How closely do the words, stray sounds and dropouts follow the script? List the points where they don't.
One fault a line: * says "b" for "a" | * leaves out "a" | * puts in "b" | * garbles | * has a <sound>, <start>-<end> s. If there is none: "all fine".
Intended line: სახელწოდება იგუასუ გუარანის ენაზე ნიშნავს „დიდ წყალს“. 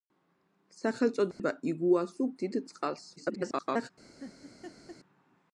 * has a dropout, 1.3-1.4 s
* leaves out "გუარანის ენაზე ნიშნავს"
* garbles
* has a laugh, 4.2-5.0 s